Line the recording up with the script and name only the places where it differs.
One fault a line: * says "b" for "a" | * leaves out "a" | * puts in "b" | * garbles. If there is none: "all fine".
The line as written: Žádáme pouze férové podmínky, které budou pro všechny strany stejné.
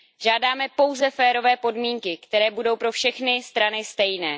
all fine